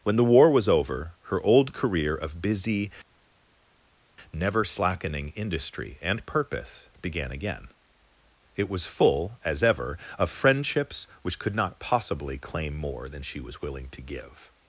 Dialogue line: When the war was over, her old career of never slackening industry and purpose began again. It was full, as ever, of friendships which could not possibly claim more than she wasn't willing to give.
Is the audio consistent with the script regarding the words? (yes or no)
no